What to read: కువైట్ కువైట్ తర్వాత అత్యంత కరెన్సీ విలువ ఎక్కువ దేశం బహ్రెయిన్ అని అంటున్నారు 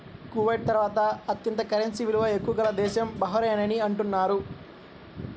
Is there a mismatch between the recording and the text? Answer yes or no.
yes